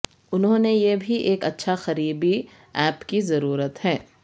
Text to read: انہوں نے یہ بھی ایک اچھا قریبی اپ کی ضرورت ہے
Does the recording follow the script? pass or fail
pass